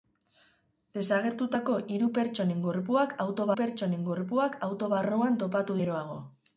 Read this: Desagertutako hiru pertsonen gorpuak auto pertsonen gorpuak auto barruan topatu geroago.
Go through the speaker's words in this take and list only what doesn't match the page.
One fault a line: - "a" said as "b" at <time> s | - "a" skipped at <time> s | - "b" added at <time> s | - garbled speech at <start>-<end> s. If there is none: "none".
none